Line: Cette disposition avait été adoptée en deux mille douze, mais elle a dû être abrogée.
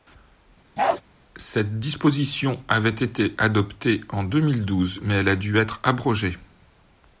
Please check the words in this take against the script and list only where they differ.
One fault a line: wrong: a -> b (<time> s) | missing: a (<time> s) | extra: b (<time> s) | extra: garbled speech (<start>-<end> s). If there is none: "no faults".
no faults